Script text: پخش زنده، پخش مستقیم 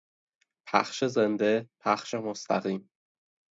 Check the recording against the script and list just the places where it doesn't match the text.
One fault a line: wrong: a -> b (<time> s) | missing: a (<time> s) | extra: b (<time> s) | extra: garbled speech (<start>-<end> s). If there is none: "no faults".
no faults